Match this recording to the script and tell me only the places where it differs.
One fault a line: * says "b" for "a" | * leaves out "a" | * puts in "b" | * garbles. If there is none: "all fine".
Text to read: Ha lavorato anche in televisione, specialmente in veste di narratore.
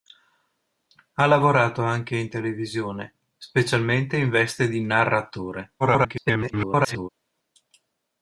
* garbles